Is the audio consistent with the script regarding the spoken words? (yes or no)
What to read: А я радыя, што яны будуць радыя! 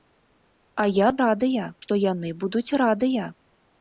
yes